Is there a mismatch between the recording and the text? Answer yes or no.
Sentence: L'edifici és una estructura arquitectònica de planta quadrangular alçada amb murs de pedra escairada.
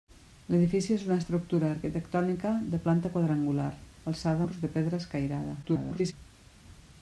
yes